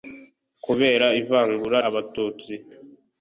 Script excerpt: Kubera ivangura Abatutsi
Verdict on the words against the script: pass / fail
pass